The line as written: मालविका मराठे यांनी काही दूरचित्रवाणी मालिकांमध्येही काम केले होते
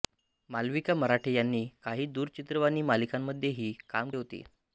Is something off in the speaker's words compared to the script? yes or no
yes